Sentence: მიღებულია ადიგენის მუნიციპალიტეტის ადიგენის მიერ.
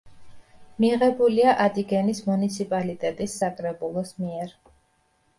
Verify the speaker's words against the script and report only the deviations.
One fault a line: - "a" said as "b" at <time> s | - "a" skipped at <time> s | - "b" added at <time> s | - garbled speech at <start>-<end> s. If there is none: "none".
- "ადიგენის" said as "საკრებულოს" at 3.4 s